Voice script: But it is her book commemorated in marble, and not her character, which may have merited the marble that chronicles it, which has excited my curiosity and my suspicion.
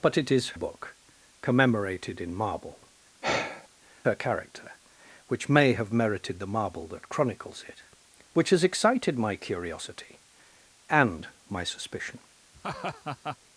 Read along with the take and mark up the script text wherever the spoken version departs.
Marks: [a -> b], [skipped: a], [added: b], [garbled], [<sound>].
But it is [skipped: her] book commemorated in marble, [skipped: and not] [sigh] her character, which may have merited the marble that chronicles it, which has excited my curiosity and my suspicion. [laugh]